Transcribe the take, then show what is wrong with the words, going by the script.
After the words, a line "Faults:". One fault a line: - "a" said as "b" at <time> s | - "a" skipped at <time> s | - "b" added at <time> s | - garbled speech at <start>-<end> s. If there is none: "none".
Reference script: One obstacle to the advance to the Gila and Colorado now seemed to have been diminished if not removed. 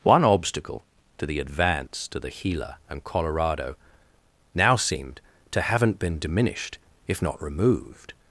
One obstacle to the advance to the Gila and Colorado now seemed to haven't been diminished if not removed.
Faults:
- "have" said as "haven't" at 5.6 s